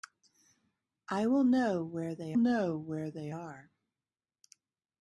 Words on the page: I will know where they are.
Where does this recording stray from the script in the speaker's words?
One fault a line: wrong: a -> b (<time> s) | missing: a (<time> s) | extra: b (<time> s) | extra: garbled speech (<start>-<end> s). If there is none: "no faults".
extra: know where they (2.3 s)